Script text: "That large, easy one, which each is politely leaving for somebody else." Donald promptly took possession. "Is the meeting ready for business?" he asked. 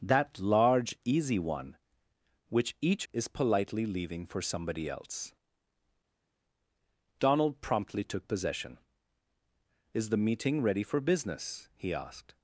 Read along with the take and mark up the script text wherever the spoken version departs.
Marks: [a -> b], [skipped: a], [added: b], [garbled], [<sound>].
"That large, easy one, which each is politely leaving for somebody else." Donald promptly took possession. "Is the meeting ready for business?" he asked.